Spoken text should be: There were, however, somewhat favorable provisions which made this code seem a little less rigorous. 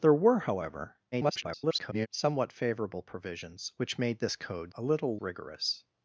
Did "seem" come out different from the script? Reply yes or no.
yes